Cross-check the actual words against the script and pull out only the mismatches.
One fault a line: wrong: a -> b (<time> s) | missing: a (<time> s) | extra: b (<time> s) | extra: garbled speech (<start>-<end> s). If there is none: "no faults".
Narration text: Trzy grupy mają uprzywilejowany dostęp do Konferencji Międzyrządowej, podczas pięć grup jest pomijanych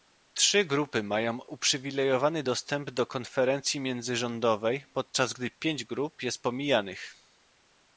extra: gdy (5.3 s)